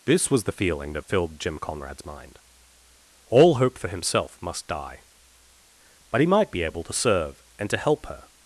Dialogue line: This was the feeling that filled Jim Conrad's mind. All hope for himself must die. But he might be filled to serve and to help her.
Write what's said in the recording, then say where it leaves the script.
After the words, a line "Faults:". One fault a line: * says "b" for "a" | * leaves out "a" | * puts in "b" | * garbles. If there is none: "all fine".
This was the feeling that filled Jim Conrad's mind. All hope for himself must die. But he might be able to serve and to help her.
Faults:
* says "able" for "filled"